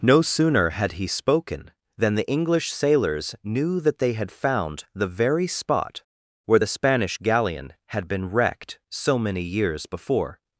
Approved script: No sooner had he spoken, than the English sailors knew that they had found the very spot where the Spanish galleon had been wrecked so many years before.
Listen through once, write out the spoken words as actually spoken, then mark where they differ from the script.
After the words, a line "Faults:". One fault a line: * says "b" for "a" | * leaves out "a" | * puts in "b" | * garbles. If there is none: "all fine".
No sooner had he spoken, than the English sailors knew that they had found the very spot where the Spanish galleon had been wrecked so many years before.
Faults:
all fine